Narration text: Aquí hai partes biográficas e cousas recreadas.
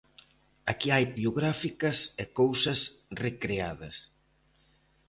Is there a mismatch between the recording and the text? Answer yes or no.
yes